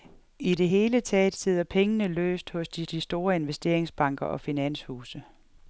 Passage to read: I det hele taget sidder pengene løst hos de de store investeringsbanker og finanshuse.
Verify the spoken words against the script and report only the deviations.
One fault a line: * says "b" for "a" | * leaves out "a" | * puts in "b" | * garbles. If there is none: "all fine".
all fine